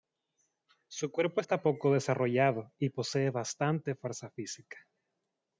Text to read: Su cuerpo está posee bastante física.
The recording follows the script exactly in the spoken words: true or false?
false